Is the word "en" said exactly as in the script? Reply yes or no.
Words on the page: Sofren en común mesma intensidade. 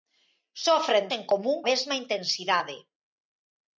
yes